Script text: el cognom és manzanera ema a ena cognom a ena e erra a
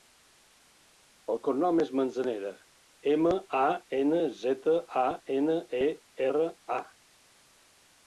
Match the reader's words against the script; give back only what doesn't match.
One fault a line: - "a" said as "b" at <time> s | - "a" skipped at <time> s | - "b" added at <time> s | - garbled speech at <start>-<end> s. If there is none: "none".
- "cognom" said as "zeta" at 4.4 s